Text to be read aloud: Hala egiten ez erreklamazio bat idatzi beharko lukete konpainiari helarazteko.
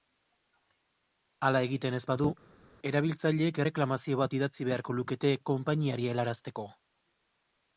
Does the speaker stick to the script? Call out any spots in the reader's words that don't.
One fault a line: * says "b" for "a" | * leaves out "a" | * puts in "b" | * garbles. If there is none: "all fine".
* puts in "badu erabiltzaileek"